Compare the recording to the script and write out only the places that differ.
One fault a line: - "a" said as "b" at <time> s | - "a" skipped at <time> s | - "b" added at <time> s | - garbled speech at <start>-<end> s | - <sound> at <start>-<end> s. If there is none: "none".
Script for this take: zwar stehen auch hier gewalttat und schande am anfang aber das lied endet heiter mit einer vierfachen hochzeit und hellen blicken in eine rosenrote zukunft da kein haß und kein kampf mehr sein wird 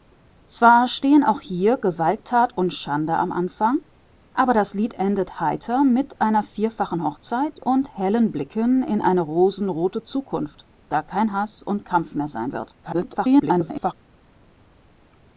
- "kein" skipped at 11.8 s
- garbled speech at 12.8-13.9 s